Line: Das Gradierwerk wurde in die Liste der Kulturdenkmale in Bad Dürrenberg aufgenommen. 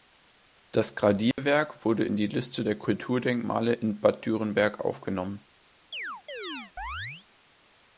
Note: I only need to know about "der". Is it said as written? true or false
true